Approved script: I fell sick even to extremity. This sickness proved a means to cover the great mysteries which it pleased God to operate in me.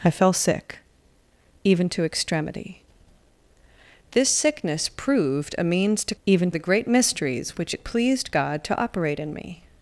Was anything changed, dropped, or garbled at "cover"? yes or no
yes